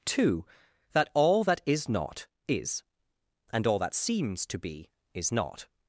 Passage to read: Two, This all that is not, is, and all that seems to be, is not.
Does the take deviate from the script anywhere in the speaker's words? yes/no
yes